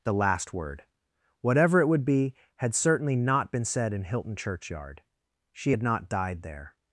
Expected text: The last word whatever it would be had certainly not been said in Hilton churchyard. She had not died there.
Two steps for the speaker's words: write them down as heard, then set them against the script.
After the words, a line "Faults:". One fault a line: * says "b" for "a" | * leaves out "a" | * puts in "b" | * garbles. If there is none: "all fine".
The last word whatever it would be had certainly not been said in Hilton churchyard. She had not died there.
Faults:
all fine